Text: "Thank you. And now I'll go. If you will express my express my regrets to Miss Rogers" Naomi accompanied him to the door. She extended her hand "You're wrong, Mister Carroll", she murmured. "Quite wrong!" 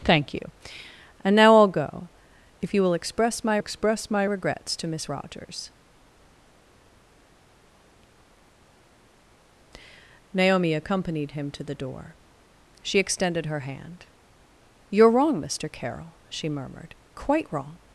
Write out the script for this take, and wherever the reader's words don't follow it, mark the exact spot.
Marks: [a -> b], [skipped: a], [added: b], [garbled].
"Thank you. And now I'll go. If you will express my express my regrets to Miss Rogers" Naomi accompanied him to the door. She extended her hand "You're wrong, Mister Carroll", she murmured. "Quite wrong!"